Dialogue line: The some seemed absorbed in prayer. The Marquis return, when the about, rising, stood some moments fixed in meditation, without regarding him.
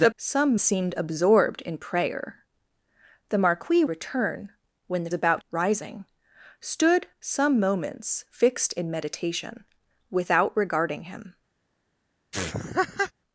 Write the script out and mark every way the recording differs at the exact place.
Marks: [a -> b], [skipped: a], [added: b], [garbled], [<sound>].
The some seemed absorbed in prayer. The Marquis return, when the about, rising, stood some moments fixed in meditation, without regarding him. [laugh]